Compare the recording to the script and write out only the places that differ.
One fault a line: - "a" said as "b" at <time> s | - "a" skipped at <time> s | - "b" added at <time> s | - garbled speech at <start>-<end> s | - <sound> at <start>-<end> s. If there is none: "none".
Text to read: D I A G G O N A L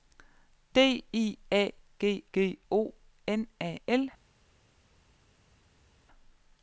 none